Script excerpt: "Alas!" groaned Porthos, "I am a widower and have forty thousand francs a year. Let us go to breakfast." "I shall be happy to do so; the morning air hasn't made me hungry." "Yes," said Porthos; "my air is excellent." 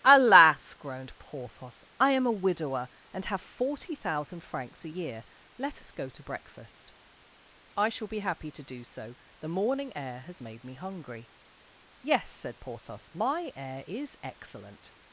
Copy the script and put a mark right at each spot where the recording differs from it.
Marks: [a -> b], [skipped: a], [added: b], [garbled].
"Alas!" groaned Porthos, "I am a widower and have forty thousand francs a year. Let us go to breakfast." "I shall be happy to do so; the morning air [hasn't -> has] made me hungry." "Yes," said Porthos; "my air is excellent."